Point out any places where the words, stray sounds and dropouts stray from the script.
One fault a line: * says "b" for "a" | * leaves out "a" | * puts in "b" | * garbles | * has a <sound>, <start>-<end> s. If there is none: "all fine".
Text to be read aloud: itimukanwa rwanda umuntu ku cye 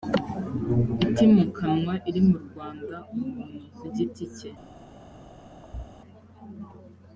* puts in "iri mu"
* puts in "giti"
* has a thud, 5.6-5.9 s